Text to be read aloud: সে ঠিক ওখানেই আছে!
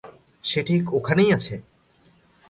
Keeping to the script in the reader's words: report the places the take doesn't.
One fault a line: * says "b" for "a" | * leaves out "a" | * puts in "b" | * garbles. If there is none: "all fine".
all fine